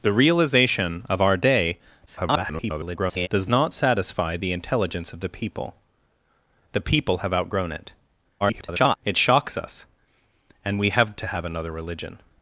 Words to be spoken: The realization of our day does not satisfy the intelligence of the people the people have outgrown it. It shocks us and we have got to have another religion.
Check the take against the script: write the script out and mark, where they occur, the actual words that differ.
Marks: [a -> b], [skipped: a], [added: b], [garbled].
The realization of our day [garbled] does not satisfy the intelligence of the people the people have outgrown it. [garbled] It shocks us and we have [skipped: got] to have another religion.